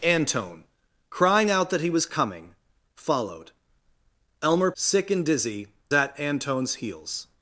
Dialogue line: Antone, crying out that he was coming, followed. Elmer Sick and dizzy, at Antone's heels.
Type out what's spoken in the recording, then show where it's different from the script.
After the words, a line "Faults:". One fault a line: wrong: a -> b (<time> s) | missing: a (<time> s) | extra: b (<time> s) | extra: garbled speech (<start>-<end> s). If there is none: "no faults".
Antone, crying out that he was coming, followed. Elmer Sick and dizzy, at Antone's heels.
Faults:
no faults